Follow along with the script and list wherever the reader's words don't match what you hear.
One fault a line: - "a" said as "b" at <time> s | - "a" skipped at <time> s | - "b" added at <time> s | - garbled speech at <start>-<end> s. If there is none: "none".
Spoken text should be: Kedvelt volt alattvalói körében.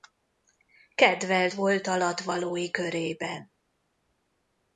none